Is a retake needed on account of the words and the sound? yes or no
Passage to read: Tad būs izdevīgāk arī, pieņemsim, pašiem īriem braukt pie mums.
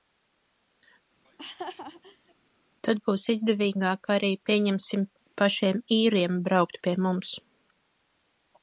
yes